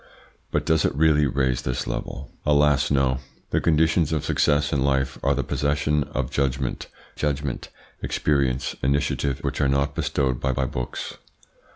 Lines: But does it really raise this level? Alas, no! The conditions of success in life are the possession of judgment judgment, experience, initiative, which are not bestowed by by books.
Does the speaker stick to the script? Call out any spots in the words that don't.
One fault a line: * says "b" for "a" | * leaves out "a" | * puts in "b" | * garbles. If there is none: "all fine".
all fine